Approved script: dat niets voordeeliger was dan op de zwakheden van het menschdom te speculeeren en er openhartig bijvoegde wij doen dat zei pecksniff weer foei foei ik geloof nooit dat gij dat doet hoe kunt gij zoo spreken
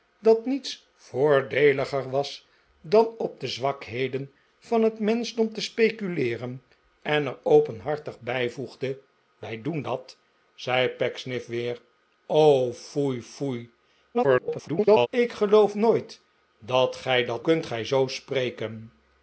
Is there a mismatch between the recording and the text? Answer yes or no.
yes